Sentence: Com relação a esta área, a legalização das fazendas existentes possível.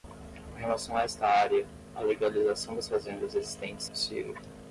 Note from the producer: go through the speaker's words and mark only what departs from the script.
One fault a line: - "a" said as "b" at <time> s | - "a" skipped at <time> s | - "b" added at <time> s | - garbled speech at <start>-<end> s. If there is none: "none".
none